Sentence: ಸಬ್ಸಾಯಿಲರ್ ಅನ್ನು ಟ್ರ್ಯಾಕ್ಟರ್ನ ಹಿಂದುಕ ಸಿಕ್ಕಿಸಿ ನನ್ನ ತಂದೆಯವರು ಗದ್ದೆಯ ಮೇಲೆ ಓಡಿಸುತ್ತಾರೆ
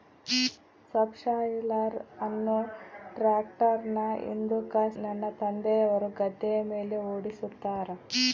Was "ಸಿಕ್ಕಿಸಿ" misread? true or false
true